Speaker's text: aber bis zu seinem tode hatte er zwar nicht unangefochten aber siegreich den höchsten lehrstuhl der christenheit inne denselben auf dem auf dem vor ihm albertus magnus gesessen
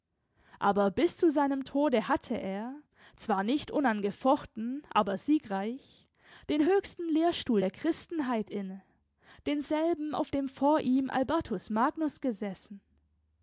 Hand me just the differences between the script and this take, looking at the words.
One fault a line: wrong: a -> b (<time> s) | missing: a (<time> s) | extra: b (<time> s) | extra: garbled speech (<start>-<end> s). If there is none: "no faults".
missing: auf dem (10.5 s)